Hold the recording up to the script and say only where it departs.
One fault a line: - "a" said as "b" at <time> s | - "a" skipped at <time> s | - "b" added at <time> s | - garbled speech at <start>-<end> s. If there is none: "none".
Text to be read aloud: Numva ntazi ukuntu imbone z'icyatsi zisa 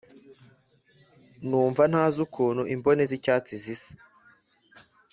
none